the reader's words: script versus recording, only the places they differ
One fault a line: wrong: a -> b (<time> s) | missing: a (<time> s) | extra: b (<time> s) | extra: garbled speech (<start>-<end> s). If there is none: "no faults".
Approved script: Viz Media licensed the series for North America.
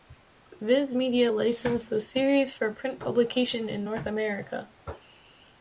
extra: print publication in (2.7 s)